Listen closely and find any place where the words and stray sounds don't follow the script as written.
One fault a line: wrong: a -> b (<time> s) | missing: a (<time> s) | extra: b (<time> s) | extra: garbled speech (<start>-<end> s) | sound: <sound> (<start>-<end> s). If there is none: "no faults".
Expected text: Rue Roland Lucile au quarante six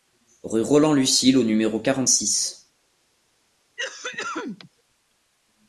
extra: numéro (1.4 s)
sound: cough (3.8-4.7 s)